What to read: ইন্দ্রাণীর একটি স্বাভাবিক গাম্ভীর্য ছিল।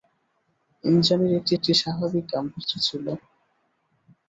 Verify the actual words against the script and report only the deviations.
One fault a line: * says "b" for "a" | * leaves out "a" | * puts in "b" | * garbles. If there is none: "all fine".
* puts in "একটি"